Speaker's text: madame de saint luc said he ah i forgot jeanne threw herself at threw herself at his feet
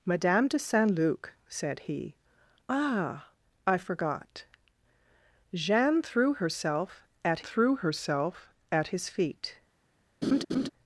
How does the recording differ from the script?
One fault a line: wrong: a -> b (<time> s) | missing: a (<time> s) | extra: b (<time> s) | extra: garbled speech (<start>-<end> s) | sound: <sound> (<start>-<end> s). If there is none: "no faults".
sound: laugh (10.2-10.7 s)